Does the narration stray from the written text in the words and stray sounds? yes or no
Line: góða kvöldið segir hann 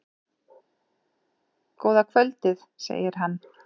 no